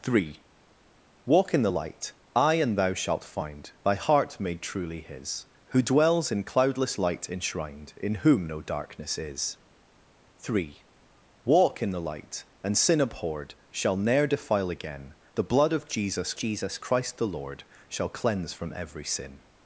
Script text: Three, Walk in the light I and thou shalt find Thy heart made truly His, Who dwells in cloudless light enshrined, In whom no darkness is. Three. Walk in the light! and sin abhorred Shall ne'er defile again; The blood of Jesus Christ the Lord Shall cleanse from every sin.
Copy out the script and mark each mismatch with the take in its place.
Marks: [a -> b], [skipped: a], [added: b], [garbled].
Three, Walk in the light I and thou shalt find Thy heart made truly His, Who dwells in cloudless light enshrined, In whom no darkness is. Three. Walk in the light! and sin abhorred Shall ne'er defile again; The blood of Jesus [added: Jesus] Christ the Lord Shall cleanse from every sin.